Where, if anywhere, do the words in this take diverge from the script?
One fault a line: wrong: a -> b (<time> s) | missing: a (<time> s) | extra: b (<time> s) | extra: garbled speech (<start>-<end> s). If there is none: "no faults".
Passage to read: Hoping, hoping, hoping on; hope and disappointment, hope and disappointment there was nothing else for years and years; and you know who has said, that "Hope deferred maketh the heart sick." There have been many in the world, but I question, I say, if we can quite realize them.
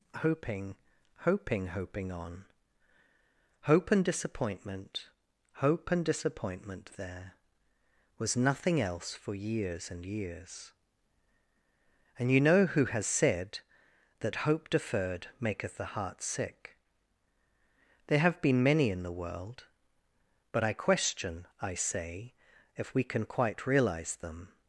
no faults